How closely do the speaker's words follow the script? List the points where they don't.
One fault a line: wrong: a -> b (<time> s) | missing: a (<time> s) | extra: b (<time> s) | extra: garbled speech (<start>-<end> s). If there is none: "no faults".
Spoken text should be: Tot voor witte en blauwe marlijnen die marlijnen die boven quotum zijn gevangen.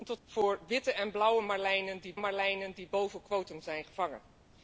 no faults